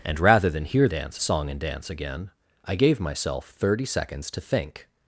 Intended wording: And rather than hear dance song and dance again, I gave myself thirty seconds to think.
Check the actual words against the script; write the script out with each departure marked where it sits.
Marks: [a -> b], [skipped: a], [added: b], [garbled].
And rather than hear dance song and dance again, I gave myself thirty seconds to think.